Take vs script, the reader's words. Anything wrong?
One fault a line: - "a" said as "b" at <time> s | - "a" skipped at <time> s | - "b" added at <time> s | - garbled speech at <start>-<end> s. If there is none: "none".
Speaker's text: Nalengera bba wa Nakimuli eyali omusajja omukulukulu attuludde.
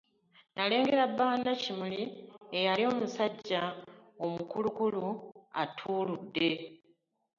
none